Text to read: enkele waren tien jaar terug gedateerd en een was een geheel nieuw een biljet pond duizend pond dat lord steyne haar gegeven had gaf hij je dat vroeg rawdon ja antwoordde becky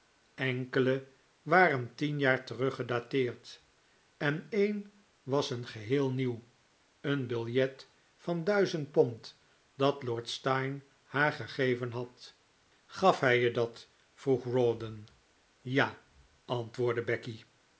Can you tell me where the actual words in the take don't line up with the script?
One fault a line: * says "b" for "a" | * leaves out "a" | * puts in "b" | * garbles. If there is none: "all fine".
* says "van" for "pond"